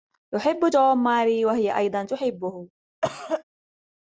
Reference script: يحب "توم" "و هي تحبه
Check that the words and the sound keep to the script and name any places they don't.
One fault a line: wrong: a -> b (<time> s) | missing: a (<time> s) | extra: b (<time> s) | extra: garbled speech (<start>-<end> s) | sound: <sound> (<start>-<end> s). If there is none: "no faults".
extra: ماري (1.0 s)
extra: أيضا (1.8 s)
sound: cough (3.0-3.4 s)